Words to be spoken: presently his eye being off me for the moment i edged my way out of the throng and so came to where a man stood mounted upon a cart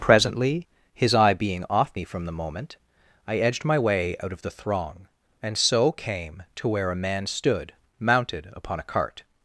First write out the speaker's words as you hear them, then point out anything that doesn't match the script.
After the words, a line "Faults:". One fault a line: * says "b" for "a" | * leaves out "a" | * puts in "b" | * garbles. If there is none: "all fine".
presently his eye being off me from the moment i edged my way out of the throng and so came to where a man stood mounted upon a cart
Faults:
* says "from" for "for"